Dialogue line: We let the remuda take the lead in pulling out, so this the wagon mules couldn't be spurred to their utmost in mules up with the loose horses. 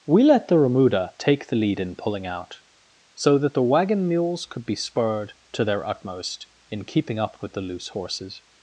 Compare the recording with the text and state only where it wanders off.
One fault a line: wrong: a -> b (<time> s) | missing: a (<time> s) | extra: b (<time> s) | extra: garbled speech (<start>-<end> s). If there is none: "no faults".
wrong: this -> that (3.4 s)
wrong: couldn't -> could (4.4 s)
wrong: mules -> keeping (6.8 s)